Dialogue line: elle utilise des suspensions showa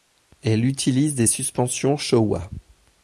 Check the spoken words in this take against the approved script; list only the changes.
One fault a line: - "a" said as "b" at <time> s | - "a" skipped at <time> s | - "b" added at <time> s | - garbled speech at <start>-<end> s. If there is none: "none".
none